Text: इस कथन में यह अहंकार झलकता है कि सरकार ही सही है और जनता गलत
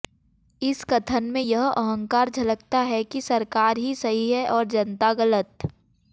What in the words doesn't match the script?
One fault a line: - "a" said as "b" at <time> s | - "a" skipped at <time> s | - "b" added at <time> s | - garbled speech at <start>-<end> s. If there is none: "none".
none